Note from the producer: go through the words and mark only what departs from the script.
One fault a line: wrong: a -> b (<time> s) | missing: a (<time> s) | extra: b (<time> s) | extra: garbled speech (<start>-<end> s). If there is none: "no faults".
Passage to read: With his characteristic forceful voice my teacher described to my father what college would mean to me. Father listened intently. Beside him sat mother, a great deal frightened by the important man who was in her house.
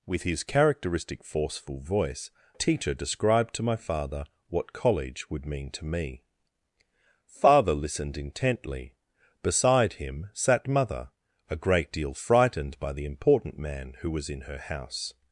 missing: my (2.3 s)